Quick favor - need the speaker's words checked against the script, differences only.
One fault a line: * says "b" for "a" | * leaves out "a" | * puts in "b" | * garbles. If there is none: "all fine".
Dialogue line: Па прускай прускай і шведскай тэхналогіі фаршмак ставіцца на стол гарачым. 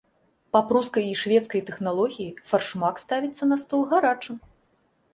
* leaves out "прускай"